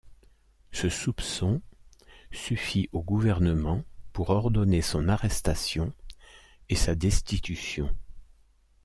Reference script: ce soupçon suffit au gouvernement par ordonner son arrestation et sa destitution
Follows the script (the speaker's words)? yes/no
no